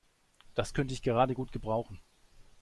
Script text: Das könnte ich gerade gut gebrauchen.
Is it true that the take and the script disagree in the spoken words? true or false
false